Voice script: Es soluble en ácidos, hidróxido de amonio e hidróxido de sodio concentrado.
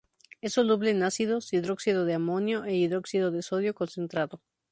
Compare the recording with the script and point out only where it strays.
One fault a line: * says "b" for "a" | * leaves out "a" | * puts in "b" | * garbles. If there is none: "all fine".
all fine